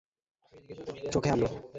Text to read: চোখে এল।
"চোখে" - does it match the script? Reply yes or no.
yes